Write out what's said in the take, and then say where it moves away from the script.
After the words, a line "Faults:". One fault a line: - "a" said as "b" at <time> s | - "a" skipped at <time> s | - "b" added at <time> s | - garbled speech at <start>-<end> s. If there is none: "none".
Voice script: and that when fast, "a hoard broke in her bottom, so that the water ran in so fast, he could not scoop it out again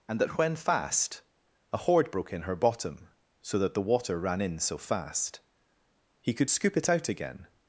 and that when fast, "a hoard broke in her bottom, so that the water ran in so fast, he could scoop it out again
Faults:
- "not" skipped at 6.5 s